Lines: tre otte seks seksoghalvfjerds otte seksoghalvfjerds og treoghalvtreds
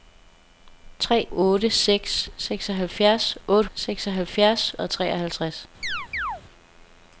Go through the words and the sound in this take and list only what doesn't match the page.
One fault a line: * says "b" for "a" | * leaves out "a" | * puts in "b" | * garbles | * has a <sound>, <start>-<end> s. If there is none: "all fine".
* has a chirp, 5.8-6.4 s